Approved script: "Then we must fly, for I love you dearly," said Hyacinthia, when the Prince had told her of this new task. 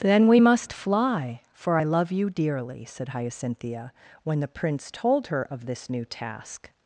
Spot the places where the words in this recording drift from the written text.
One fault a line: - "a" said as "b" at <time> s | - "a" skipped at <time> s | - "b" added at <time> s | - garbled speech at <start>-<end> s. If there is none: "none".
- "had" skipped at 4.9 s